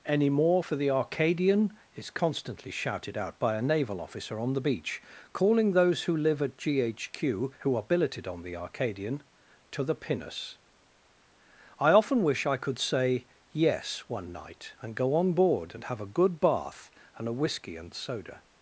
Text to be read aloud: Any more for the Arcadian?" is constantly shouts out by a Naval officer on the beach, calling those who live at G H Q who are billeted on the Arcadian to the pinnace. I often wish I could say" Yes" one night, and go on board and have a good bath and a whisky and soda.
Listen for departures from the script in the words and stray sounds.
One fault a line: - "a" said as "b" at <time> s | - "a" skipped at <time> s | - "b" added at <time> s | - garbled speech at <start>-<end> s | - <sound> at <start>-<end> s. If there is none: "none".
- "shouts" said as "shouted" at 2.7 s